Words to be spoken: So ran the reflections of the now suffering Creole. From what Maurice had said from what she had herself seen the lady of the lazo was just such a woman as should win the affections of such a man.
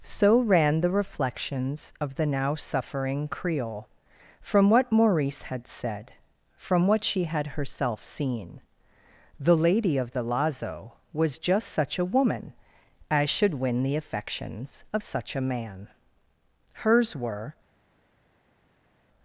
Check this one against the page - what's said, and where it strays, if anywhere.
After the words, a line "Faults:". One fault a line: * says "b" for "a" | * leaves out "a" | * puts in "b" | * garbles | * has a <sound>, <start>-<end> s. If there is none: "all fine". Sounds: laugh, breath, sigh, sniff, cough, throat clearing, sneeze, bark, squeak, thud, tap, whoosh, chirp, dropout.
So ran the reflections of the now suffering Creole. From what Maurice had said from what she had herself seen the lady of the lazo was just such a woman as should win the affections of such a man. Hers were
Faults:
* puts in "Hers were"